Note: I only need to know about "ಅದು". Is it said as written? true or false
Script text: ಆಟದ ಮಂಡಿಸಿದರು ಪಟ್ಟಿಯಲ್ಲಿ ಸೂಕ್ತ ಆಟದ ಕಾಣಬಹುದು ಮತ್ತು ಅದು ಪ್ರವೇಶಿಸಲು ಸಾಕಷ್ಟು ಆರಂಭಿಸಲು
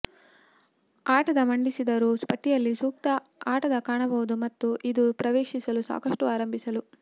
false